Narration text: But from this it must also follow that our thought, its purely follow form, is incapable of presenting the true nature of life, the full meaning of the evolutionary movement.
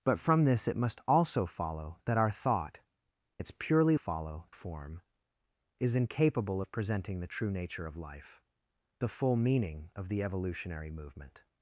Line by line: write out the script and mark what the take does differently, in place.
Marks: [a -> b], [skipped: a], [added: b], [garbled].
But from this it must also follow that our thought, its purely follow form, is incapable of presenting the true nature of life, the full meaning of the evolutionary movement.